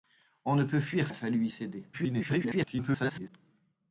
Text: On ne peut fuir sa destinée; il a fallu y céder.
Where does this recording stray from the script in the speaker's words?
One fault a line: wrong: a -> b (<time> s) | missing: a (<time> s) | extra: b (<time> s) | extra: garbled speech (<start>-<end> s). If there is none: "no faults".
missing: sa destinée il (1.1 s)
extra: garbled speech (1.9-3.3 s)